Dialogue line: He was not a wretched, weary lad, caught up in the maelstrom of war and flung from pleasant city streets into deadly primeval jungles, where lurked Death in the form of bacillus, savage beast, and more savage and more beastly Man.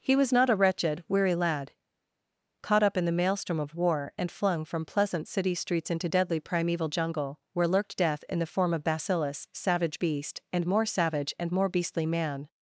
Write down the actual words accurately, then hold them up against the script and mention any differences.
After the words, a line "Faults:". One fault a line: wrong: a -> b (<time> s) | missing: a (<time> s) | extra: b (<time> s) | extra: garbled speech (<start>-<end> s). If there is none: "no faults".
He was not a wretched, weary lad, caught up in the maelstrom of war and flung from pleasant city streets into deadly primeval jungle, where lurked Death in the form of bacillus, savage beast, and more savage and more beastly Man.
Faults:
wrong: jungles -> jungle (6.9 s)